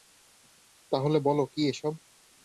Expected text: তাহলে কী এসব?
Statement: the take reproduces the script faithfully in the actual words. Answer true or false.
false